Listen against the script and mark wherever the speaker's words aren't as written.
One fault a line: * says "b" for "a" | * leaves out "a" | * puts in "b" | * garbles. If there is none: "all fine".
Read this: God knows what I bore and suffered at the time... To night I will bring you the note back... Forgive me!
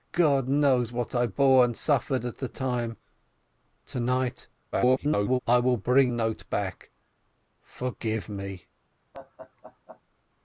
* garbles
* leaves out "you the"